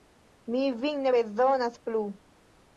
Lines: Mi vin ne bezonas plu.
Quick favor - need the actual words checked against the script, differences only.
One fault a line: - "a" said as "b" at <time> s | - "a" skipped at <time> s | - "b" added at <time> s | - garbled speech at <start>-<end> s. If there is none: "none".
none